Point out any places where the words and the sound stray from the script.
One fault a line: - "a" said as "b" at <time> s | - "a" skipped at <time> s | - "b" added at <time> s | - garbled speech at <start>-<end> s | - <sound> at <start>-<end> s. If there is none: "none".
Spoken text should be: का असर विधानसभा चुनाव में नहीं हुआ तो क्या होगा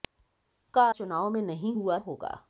- "असर विधानसभा" skipped at 0.8 s
- "तो क्या" skipped at 2.0 s